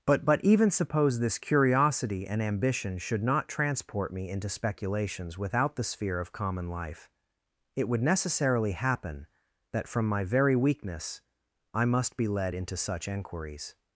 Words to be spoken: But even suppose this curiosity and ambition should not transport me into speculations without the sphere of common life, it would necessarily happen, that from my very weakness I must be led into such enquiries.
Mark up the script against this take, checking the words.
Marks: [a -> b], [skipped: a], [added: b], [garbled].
But [added: but] even suppose this curiosity and ambition should not transport me into speculations without the sphere of common life, it would necessarily happen, that from my very weakness I must be led into such enquiries.